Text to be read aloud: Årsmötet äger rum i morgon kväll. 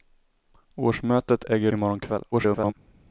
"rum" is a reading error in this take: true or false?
true